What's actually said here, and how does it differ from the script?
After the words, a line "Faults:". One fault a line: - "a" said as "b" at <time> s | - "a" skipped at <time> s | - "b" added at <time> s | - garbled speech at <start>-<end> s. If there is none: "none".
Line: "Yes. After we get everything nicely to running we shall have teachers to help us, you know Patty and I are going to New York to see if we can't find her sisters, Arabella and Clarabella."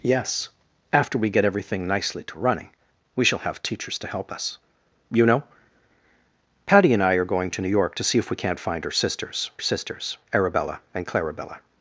"Yes. After we get everything nicely to running we shall have teachers to help us, you know Patty and I are going to New York to see if we can't find her sisters sisters, Arabella and Clarabella."
Faults:
- "sisters" added at 9.6 s